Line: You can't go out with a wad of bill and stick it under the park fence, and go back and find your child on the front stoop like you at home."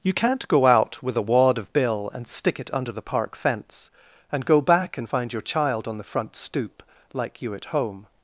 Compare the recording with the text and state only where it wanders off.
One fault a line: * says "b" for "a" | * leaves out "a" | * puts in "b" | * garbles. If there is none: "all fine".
all fine